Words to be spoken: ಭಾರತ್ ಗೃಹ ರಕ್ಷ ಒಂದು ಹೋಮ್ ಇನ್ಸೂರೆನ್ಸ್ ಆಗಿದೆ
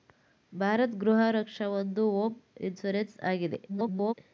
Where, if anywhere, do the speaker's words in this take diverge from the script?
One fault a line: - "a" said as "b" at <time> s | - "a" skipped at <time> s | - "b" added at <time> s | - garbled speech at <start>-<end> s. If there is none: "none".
- garbled speech at 3.7-4.1 s